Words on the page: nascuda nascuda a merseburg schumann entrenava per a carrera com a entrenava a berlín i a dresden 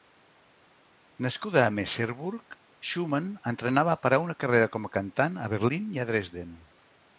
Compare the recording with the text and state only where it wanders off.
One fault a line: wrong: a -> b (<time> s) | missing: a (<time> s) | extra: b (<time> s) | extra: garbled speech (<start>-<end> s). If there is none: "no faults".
missing: nascuda (1.6 s)
extra: una (4.2 s)
wrong: entrenava -> cantant (5.0 s)